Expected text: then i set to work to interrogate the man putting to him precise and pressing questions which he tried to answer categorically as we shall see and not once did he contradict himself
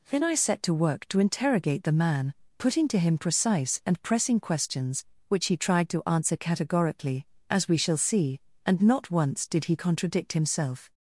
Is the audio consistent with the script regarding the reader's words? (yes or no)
yes